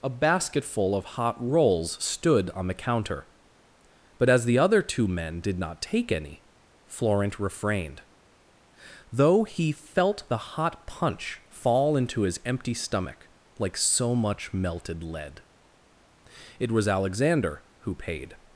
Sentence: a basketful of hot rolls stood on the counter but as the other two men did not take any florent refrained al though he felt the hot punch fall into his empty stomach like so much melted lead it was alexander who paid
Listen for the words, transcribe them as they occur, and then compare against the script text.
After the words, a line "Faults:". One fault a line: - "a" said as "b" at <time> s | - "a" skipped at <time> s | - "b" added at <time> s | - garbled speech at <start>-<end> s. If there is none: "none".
a basketful of hot rolls stood on the counter but as the other two men did not take any florent refrained though he felt the hot punch fall into his empty stomach like so much melted lead it was alexander who paid
Faults:
- "al" skipped at 8.0 s